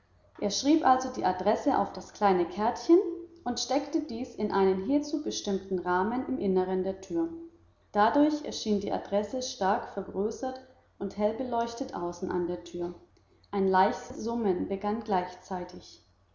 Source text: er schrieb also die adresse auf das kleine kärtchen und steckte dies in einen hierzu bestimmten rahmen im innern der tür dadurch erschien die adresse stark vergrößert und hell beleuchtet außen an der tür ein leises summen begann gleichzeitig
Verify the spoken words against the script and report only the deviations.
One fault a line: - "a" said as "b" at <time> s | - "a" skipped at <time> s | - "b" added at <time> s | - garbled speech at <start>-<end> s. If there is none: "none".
none